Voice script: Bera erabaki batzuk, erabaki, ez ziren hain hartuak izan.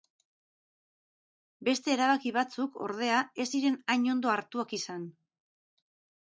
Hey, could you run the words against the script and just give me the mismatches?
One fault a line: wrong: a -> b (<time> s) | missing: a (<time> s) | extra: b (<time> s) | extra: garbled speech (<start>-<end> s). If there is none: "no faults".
wrong: Bera -> Beste (1.7 s)
wrong: erabaki -> ordea (2.9 s)
extra: ondo (4.2 s)